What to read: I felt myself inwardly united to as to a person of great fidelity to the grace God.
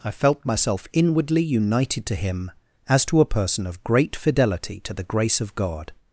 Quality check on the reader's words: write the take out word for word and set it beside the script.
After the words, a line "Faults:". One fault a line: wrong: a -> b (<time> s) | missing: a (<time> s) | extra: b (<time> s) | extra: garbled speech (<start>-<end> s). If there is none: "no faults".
I felt myself inwardly united to him, as to a person of great fidelity to the grace of God.
Faults:
extra: him (2.1 s)
extra: of (5.4 s)